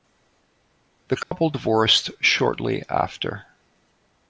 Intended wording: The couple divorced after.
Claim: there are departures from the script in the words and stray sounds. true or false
true